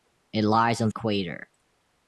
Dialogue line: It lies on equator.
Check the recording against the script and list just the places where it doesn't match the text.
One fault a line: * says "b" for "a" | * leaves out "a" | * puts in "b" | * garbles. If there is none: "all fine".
all fine